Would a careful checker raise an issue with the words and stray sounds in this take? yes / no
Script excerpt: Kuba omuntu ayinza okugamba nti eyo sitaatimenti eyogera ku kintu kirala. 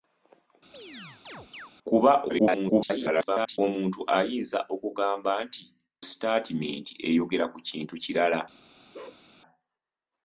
yes